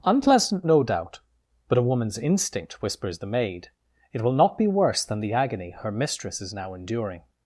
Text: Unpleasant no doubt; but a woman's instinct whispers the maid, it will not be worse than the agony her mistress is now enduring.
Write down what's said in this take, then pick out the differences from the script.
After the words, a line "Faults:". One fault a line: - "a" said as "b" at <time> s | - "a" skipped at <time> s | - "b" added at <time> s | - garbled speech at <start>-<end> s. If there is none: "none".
Unpleasant no doubt; but a woman's instinct whispers the maid, it will not be worse than the agony her mistress is now enduring.
Faults:
none